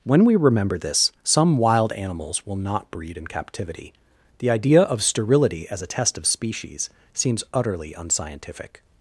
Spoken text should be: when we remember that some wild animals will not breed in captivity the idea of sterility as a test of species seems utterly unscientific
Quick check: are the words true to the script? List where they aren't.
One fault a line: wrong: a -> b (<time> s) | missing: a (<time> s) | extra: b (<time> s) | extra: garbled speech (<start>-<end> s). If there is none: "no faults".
wrong: that -> this (0.8 s)